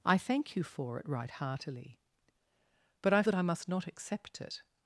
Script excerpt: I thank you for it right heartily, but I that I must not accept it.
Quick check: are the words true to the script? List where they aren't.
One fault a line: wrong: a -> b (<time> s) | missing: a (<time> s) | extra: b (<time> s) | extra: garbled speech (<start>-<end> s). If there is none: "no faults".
no faults